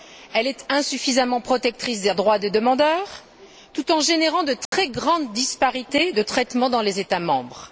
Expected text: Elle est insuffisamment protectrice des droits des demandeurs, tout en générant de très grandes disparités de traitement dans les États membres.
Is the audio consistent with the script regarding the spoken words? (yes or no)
yes